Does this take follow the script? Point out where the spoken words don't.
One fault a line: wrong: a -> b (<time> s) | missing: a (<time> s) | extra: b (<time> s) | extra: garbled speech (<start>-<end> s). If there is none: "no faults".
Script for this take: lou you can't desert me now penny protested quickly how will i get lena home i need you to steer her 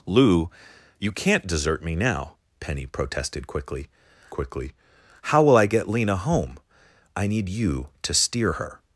extra: quickly (4.3 s)